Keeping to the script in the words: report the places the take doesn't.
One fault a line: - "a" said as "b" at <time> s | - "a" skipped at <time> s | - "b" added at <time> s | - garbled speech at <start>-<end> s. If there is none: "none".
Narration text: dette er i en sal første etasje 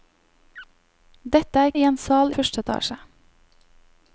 none